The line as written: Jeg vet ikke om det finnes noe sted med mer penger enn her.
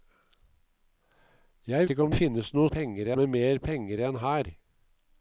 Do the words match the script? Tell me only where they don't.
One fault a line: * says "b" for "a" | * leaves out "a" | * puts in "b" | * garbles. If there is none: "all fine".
* leaves out "vet"
* leaves out "det"
* says "penger" for "sted"